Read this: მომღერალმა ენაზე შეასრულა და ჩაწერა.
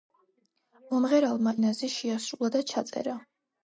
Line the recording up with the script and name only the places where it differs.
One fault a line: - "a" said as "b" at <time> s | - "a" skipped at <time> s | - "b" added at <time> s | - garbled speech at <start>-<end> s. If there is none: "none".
none